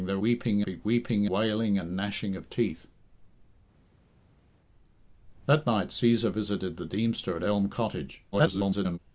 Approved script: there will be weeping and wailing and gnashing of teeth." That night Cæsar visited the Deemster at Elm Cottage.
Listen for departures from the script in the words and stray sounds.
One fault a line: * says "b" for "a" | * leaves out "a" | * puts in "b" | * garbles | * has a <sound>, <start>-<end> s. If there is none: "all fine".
* says "weeping" for "will"
* leaves out "and"
* garbles